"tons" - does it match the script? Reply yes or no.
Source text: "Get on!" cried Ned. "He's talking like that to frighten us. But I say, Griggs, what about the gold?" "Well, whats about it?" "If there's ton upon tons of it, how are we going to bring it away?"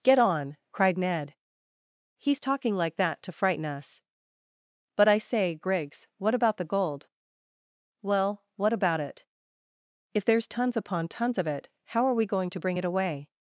yes